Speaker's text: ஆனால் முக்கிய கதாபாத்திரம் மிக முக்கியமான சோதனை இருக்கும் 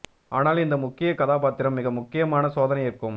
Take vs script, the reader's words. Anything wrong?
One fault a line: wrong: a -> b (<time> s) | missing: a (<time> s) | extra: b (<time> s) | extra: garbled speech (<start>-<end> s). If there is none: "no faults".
extra: இந்த (0.6 s)